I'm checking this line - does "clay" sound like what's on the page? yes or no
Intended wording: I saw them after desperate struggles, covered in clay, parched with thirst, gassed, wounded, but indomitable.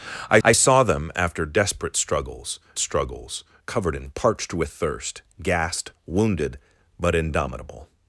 no